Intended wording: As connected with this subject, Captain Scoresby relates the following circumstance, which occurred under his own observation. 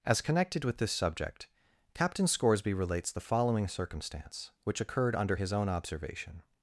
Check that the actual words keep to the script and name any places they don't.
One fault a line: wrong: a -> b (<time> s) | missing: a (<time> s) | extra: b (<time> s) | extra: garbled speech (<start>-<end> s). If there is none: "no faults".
no faults